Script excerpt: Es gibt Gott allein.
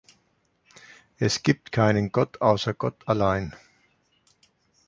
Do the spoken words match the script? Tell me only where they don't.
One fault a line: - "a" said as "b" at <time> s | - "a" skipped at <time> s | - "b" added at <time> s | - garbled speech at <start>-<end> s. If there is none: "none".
- "keinen Gott außer" added at 1.7 s